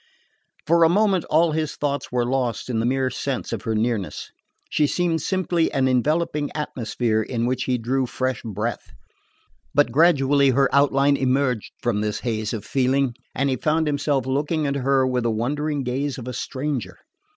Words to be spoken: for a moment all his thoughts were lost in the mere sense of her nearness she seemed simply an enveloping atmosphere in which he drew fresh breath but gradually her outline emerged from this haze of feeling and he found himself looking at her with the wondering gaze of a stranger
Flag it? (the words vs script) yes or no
no